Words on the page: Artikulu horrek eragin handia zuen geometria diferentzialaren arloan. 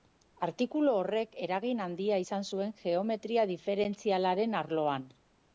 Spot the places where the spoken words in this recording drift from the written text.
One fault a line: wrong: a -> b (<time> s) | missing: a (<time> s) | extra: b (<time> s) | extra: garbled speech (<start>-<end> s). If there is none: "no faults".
extra: izan (2.2 s)